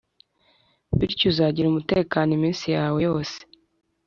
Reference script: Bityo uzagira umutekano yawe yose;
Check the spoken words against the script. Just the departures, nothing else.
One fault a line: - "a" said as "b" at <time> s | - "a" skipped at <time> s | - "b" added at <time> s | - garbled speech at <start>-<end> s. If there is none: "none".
- "iminsi" added at 2.4 s